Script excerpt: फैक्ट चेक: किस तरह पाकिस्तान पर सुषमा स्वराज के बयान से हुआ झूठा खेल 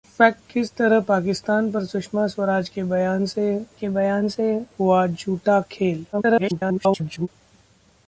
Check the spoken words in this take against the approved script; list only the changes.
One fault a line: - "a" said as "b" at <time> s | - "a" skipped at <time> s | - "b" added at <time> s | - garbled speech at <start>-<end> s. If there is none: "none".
- "चेक" skipped at 0.4 s
- "के बयान से" added at 3.7 s
- garbled speech at 6.1-7.3 s